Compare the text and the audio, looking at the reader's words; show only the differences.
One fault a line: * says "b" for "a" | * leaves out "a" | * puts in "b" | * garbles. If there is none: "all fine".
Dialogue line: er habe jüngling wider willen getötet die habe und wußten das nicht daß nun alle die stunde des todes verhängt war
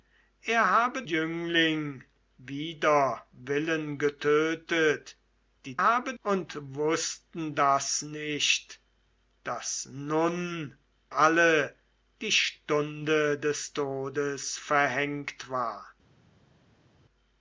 all fine